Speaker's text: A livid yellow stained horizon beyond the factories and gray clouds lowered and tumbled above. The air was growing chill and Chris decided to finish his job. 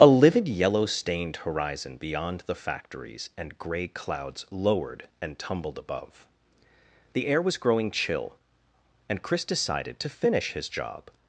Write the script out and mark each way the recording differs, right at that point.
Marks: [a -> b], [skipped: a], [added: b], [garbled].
A livid yellow stained horizon beyond the factories and gray clouds lowered and tumbled above. The air was growing chill and Chris decided to finish his job.